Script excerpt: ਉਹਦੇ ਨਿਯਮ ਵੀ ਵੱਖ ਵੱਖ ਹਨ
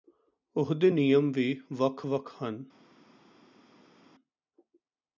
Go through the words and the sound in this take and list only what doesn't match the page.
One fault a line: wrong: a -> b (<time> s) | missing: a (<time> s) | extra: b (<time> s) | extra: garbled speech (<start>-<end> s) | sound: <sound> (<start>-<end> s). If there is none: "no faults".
no faults